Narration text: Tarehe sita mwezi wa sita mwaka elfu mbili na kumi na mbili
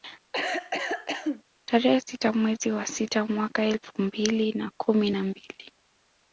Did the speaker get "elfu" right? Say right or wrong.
right